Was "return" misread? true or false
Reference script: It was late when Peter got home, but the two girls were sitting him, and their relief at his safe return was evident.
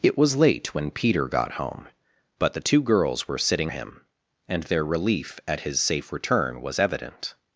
false